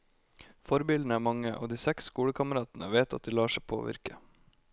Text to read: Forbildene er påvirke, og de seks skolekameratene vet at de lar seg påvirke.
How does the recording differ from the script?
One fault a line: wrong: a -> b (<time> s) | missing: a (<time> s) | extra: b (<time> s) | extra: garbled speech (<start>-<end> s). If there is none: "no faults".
wrong: påvirke -> mange (1.2 s)